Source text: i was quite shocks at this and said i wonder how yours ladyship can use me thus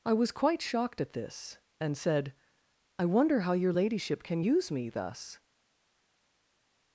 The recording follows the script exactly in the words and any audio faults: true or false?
false